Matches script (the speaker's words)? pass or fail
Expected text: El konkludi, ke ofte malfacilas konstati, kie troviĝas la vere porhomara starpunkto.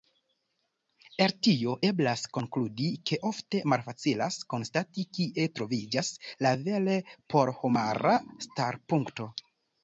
fail